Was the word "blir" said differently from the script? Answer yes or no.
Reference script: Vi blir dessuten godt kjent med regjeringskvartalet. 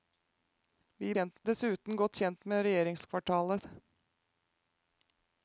yes